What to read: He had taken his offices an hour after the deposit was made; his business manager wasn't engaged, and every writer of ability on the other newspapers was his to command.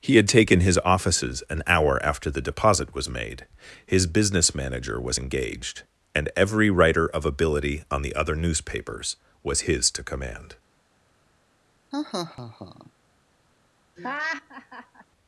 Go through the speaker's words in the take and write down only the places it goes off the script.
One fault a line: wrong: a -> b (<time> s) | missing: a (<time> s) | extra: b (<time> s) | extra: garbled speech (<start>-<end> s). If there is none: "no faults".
wrong: wasn't -> was (5.0 s)